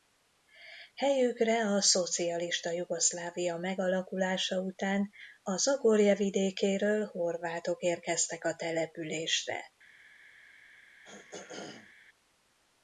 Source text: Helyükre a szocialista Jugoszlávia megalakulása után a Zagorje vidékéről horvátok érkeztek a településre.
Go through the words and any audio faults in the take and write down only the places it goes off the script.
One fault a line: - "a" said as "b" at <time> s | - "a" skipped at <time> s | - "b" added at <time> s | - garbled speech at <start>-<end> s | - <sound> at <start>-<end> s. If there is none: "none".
- throat clearing at 11.0-11.9 s